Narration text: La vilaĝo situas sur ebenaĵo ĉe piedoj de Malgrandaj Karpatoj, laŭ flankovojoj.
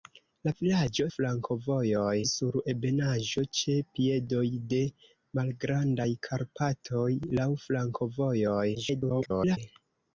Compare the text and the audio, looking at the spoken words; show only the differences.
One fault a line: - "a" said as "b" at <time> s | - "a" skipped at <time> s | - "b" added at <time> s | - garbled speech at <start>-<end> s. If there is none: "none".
- "situas" said as "flankovojoj" at 1.2 s
- garbled speech at 8.7-9.6 s